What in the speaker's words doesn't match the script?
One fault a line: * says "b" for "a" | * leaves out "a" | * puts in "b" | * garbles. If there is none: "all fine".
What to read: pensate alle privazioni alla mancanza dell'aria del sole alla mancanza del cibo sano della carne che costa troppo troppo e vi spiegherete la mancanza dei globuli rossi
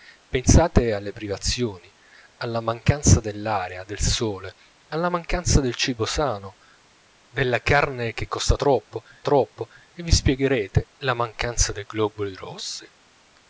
all fine